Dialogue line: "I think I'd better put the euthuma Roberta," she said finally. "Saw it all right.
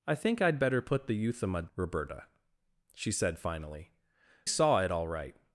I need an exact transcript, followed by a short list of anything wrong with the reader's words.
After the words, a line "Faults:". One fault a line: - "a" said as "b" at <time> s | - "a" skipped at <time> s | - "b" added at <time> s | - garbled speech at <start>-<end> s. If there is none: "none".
"I think I'd better put the euthuma Roberta," she said finally. "Saw it all right.
Faults:
none